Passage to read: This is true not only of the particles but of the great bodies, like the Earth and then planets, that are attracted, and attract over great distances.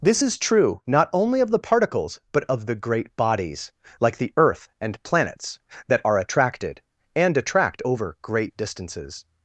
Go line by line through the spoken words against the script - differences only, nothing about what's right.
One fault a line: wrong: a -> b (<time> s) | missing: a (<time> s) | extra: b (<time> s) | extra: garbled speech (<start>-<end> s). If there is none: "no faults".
missing: then (5.0 s)